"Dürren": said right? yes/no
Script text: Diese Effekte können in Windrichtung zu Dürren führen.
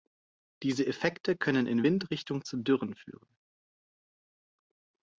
yes